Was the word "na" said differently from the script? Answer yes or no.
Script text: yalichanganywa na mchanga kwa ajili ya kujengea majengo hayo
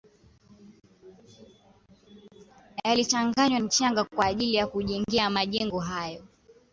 yes